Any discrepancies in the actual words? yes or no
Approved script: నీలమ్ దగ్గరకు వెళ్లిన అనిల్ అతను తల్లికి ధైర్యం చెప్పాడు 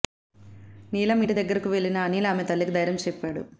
yes